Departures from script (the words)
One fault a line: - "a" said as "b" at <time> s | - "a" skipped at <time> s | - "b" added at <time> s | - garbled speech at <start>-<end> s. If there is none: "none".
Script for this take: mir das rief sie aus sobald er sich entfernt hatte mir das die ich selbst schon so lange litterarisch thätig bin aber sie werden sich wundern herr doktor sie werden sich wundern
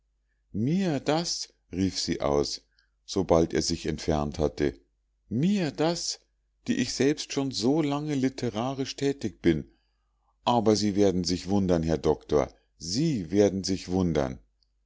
none